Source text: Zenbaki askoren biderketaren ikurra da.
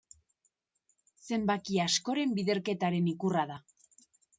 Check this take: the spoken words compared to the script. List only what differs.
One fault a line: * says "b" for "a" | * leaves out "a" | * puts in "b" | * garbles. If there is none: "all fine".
all fine